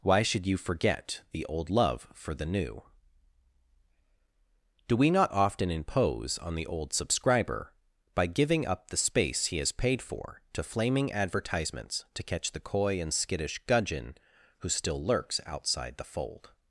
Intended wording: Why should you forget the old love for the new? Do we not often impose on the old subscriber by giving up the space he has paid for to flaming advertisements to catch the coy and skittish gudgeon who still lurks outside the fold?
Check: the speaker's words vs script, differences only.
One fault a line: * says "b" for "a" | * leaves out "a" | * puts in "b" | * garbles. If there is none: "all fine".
all fine